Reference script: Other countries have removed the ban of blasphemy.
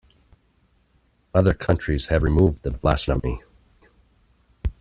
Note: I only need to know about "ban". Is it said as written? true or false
false